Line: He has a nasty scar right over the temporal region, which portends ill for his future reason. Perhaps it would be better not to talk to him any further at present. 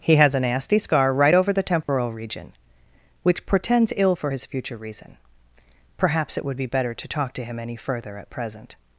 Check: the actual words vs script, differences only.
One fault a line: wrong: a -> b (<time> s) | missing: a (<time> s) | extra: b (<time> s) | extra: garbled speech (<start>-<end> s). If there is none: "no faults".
missing: not (6.9 s)